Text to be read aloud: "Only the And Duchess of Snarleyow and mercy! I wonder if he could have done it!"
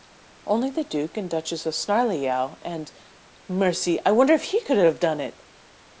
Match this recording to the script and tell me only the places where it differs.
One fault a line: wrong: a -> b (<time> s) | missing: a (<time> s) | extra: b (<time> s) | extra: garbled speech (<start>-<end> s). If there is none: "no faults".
extra: Duke (0.8 s)